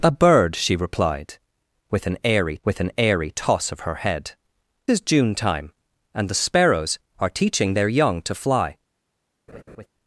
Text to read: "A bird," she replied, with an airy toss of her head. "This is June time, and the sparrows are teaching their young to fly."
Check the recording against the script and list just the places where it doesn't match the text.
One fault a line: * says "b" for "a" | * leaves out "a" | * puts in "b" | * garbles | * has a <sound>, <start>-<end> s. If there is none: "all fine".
* puts in "with an airy"
* leaves out "This"
* has a laugh, 9.5-9.9 s